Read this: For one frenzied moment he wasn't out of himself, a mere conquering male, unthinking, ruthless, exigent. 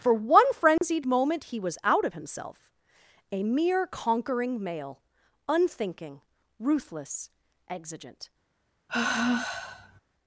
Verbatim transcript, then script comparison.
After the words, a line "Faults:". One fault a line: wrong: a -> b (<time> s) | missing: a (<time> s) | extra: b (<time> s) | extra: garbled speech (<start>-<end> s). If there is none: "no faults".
For one frenzied moment he was out of himself, a mere conquering male, unthinking, ruthless, exigent.
Faults:
wrong: wasn't -> was (1.6 s)